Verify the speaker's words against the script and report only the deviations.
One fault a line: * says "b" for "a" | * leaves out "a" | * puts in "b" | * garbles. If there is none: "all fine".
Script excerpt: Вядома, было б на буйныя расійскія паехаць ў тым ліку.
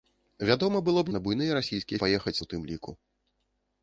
all fine